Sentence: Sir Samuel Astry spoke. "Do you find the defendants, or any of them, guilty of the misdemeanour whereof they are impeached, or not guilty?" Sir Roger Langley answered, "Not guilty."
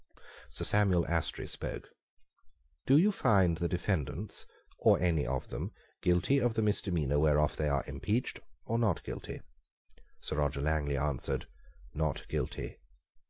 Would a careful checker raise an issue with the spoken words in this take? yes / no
no